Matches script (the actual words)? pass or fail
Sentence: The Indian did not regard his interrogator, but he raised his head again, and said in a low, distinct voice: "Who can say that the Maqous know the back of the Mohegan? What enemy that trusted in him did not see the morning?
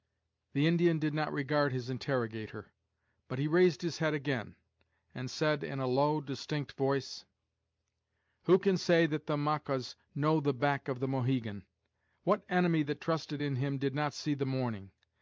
pass